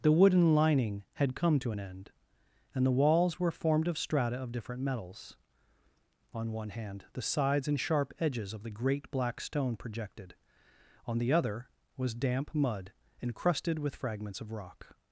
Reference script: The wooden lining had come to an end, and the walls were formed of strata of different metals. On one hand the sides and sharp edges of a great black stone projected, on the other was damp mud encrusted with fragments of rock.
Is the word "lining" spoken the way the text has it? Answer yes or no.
yes